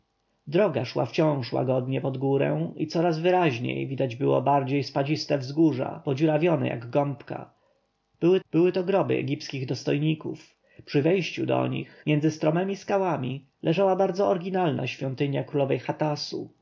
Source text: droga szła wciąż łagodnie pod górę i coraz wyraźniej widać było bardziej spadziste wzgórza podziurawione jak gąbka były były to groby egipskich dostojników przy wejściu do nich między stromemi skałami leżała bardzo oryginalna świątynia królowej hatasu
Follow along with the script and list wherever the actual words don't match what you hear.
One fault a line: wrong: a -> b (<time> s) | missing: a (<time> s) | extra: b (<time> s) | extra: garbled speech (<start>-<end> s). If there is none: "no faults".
no faults